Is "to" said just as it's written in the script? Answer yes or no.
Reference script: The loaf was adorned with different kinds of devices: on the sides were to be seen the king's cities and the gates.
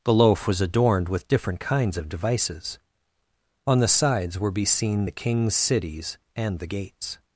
no